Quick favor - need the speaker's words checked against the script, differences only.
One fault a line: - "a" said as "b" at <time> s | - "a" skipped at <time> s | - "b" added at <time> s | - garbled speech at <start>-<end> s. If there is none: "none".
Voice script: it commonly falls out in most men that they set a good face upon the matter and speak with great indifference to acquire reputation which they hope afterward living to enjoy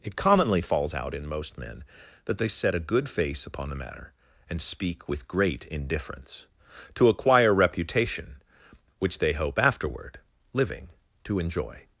none